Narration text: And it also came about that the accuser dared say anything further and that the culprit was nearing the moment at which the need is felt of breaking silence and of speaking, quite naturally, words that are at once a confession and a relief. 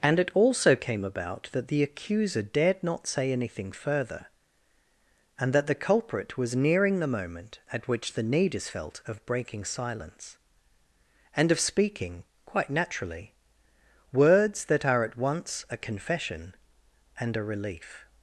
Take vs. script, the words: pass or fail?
fail